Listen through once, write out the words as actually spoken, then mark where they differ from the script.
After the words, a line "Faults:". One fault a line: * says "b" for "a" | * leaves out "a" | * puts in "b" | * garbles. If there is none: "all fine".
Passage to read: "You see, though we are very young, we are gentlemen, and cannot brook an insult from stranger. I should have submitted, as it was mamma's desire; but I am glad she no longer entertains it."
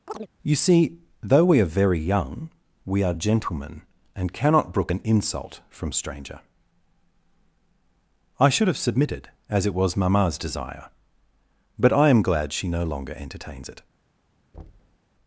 "You see, though we are very young, we are gentlemen, and cannot brook an insult from stranger. I should have submitted, as it was mamma's desire; but I am glad she no longer entertains it."
Faults:
all fine